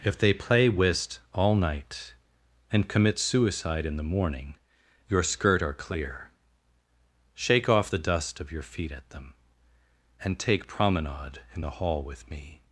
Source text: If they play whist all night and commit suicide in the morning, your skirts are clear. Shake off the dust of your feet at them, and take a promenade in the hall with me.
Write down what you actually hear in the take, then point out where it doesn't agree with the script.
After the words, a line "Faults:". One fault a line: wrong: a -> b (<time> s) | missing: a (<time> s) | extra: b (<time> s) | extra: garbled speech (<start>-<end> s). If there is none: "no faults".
If they play whist all night and commit suicide in the morning, your skirt are clear. Shake off the dust of your feet at them, and take promenade in the hall with me.
Faults:
wrong: skirts -> skirt (5.2 s)
missing: a (10.7 s)